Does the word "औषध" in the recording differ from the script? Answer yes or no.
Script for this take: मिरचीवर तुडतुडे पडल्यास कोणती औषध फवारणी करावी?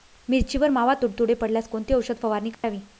no